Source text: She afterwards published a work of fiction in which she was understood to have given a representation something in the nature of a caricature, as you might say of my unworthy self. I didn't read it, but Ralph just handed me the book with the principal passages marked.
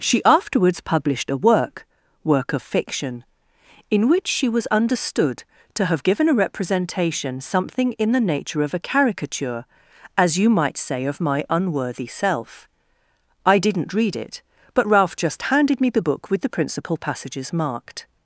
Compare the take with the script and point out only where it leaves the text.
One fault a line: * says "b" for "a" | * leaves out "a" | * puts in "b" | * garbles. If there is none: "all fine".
* puts in "work"